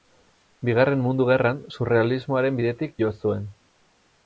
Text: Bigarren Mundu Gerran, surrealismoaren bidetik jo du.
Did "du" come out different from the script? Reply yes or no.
yes